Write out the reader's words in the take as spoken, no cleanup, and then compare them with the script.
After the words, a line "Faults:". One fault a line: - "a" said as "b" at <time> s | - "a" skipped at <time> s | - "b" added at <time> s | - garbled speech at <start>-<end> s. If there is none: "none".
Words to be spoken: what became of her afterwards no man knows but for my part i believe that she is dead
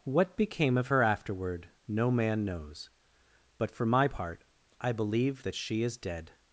what became of her afterward no man knows but for my part i believe that she is dead
Faults:
- "afterwards" said as "afterward" at 1.0 s